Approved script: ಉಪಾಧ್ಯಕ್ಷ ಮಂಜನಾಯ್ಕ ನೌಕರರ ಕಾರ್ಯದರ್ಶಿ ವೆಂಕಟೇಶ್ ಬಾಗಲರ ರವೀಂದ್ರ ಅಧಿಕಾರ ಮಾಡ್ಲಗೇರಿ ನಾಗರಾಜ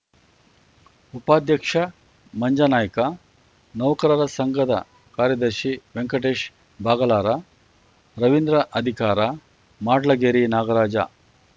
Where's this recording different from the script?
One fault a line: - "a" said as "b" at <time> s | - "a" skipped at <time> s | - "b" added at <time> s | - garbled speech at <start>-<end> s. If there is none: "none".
- "ಸಂಘದ" added at 4.4 s